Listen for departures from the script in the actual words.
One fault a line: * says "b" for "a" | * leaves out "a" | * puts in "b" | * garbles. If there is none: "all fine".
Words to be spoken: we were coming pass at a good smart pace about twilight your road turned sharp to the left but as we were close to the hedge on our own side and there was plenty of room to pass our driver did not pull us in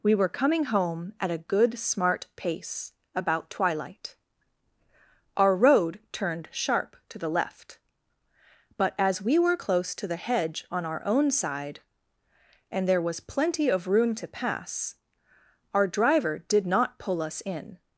* says "home" for "pass"
* says "our" for "your"